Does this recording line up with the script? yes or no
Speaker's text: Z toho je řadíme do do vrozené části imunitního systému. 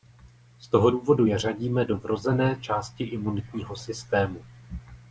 no